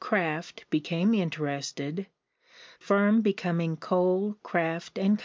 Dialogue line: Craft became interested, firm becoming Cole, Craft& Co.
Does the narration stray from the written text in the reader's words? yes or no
no